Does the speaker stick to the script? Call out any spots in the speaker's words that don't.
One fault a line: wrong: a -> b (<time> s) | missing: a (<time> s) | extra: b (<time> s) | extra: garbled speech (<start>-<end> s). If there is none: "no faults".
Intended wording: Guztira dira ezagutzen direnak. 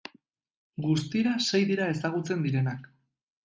extra: sei (1.5 s)